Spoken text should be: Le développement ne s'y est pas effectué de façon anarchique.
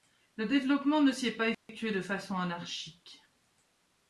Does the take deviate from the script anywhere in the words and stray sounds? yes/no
yes